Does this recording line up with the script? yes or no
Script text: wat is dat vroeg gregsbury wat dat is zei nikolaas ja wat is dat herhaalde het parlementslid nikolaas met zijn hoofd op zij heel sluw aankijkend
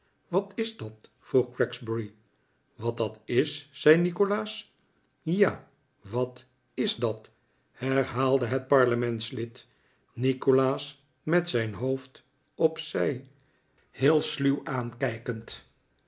yes